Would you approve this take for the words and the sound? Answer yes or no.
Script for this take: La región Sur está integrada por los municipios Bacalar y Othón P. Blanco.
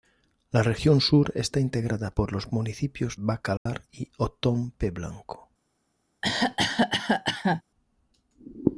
no